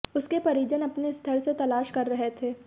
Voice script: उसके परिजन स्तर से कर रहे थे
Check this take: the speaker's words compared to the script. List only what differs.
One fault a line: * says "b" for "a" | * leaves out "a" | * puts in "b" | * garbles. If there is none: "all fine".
* puts in "अपने"
* puts in "तलाश"